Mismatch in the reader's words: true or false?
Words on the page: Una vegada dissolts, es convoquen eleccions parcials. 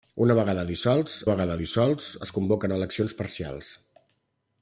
true